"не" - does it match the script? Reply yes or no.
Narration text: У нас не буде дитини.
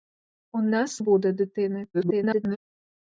no